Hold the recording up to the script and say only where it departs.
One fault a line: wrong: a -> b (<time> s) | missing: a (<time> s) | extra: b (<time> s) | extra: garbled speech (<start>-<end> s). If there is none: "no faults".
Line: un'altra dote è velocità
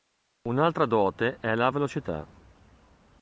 extra: la (1.5 s)